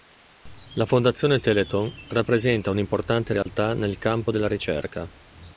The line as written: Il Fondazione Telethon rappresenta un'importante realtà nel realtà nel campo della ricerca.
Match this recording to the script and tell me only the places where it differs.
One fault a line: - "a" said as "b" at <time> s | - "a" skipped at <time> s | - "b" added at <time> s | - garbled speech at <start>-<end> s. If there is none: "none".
- "Il" said as "La" at 0.7 s
- "realtà nel" skipped at 4.0 s